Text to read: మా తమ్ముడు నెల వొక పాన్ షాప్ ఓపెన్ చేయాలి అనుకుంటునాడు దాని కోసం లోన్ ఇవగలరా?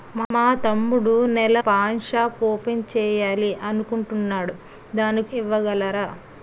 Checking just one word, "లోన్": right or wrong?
wrong